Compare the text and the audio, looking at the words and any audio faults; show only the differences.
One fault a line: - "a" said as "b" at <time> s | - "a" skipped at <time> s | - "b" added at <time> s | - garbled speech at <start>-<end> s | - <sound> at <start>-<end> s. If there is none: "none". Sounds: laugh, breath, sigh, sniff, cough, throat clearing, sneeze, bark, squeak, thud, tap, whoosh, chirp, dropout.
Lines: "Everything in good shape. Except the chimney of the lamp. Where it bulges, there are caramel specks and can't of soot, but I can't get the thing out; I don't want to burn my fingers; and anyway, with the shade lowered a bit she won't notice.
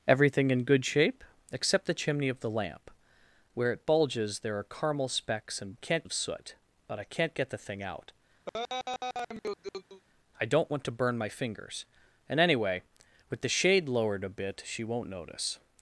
- laugh at 8.5-10.0 s